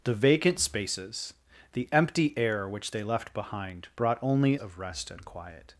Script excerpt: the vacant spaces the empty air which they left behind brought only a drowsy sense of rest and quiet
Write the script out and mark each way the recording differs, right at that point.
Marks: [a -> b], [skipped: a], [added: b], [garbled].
the vacant spaces the empty air which they left behind brought only [skipped: a drowsy sense] of rest and quiet